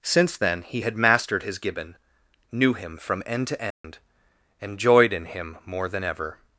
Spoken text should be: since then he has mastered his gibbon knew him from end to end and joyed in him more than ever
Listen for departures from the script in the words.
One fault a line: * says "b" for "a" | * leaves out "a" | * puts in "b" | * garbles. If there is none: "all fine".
* says "had" for "has"